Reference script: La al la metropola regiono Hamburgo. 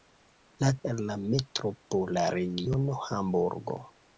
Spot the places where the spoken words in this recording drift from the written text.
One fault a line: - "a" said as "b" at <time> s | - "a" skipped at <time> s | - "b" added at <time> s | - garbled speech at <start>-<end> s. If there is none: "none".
none